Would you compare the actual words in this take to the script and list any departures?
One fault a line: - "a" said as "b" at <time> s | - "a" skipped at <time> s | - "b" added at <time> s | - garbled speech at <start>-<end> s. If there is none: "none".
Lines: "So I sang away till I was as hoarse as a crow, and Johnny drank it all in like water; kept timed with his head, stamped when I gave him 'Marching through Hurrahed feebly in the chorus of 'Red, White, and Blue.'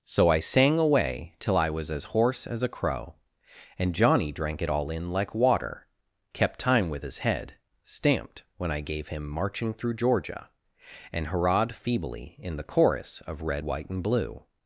- "timed" said as "time" at 6.6 s
- "Georgia and" added at 9.9 s